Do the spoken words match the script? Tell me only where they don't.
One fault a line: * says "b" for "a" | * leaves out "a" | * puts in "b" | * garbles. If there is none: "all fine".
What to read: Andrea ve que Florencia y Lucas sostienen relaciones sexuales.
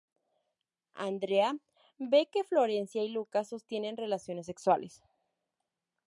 all fine